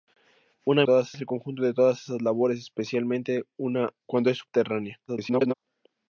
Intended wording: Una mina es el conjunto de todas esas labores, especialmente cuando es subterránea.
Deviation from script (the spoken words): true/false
true